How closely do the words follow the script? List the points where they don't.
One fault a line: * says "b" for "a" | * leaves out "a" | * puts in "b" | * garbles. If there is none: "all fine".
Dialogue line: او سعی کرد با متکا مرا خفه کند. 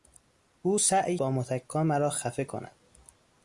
* leaves out "کرد"